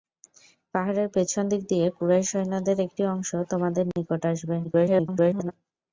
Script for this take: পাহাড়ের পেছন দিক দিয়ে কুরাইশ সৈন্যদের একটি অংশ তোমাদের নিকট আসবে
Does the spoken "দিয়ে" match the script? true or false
true